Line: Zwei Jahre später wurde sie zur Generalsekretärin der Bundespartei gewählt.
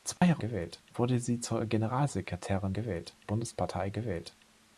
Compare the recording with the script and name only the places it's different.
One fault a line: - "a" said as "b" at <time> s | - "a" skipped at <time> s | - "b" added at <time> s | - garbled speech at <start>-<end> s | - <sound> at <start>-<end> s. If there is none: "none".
- dropout at 0.2-0.2 s
- "später" said as "gewählt" at 0.4 s
- "der" said as "gewählt" at 2.7 s